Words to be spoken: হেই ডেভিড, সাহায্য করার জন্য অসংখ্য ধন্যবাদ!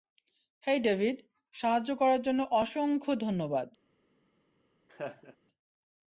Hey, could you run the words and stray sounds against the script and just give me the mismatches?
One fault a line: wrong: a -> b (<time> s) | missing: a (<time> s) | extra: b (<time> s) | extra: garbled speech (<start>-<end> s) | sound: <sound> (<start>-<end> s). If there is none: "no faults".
sound: laugh (4.9-5.4 s)